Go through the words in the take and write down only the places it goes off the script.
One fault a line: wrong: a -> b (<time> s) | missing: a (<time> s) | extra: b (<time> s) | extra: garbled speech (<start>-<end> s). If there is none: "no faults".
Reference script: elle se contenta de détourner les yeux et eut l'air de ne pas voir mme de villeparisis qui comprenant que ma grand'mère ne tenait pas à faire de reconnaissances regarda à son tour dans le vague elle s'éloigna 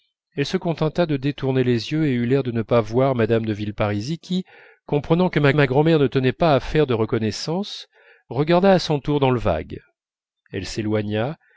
extra: ma (5.5 s)